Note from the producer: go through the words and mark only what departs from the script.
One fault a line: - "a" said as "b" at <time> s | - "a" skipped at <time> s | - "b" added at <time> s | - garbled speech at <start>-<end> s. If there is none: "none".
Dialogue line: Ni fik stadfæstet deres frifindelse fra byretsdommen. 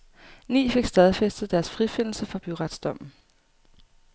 none